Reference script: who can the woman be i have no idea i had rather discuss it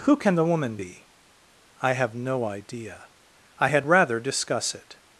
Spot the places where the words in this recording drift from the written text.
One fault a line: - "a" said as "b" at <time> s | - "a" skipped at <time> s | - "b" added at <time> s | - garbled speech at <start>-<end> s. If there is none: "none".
none